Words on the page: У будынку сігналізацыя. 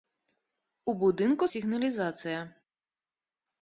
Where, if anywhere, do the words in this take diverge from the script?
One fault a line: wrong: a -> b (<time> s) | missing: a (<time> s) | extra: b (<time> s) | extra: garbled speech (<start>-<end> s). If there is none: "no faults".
no faults